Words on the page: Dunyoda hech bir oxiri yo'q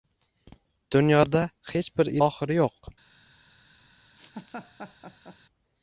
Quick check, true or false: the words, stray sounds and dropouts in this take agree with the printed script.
false